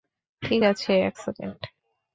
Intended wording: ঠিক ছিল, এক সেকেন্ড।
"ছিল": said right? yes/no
no